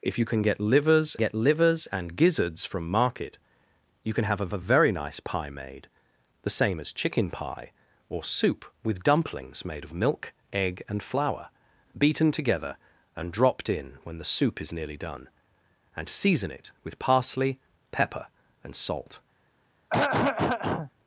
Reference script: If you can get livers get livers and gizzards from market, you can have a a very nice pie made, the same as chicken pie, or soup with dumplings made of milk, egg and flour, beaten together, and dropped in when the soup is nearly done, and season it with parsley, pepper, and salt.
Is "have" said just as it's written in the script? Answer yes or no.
yes